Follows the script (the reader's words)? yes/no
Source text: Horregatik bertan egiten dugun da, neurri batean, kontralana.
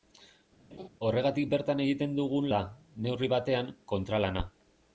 yes